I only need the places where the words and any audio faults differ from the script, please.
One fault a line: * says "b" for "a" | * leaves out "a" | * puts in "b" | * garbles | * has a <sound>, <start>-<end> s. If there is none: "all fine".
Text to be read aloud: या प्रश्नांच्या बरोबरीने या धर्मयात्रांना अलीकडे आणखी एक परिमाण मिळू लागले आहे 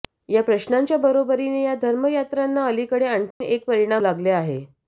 * has a dropout, 3.3-3.4 s
* leaves out "मिळू"